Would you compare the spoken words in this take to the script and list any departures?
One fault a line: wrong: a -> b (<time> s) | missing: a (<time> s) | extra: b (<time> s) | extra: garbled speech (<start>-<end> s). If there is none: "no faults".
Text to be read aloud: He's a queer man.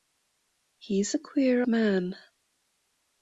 no faults